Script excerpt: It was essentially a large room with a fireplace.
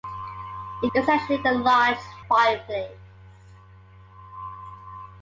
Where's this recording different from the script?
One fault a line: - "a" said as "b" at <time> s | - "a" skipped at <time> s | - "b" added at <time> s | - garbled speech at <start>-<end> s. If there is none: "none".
- "was" skipped at 0.9 s
- "room with a" skipped at 2.0 s